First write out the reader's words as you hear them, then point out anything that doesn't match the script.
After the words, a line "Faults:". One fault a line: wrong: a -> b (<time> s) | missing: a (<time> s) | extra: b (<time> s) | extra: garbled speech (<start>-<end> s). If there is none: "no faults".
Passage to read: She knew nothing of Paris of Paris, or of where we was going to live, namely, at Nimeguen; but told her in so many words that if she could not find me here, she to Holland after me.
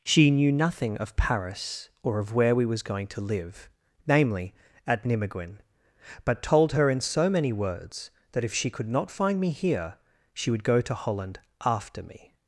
She knew nothing of Paris, or of where we was going to live, namely, at Nimeguen; but told her in so many words that if she could not find me here, she would go to Holland after me.
Faults:
missing: of Paris (1.9 s)
extra: would go (10.5 s)